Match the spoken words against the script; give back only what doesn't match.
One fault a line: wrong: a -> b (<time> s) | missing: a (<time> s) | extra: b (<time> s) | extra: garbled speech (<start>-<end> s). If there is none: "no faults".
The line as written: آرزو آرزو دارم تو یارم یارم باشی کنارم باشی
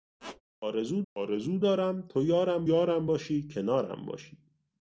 no faults